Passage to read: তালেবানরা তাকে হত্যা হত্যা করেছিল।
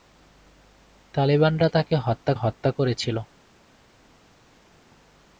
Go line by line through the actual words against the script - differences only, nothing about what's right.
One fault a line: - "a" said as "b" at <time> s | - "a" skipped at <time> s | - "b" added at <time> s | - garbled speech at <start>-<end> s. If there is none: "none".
none